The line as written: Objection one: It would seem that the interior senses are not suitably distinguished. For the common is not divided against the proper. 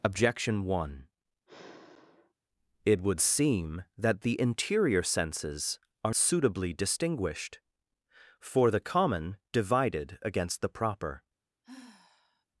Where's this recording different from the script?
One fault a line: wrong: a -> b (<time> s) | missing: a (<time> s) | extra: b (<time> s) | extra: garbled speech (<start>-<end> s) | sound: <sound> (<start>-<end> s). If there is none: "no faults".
sound: sigh (1.5-2.3 s)
missing: not (6.1 s)
missing: is not (9.4 s)
sound: sigh (11.6-12.5 s)